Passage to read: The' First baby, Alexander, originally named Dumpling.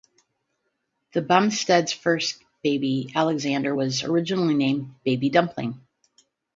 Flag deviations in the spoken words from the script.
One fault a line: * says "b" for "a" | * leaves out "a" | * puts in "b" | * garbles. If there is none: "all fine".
* puts in "Bumsteads"
* puts in "was"
* puts in "Baby"